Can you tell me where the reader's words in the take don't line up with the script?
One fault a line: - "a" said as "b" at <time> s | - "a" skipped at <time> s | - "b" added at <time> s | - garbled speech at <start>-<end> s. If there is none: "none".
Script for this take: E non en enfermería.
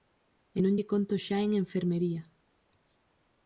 - "lle conto xa" added at 0.7 s